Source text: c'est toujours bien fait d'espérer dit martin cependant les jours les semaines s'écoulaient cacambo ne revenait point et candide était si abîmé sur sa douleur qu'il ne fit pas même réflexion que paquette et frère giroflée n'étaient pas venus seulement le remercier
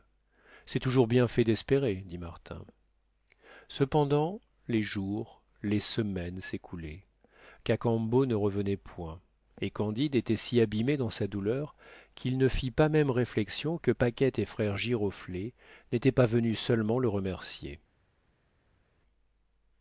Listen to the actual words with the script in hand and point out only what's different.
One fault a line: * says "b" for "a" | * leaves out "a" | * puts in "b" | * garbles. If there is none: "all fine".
* says "dans" for "sur"